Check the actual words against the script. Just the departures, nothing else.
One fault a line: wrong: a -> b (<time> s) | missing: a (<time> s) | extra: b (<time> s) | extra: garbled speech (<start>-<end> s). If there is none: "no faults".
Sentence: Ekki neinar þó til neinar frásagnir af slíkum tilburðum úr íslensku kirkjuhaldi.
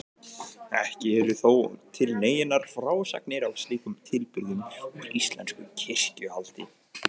wrong: neinar -> eru (1.2 s)